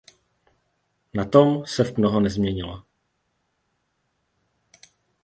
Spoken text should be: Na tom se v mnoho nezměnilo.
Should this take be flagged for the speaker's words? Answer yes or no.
no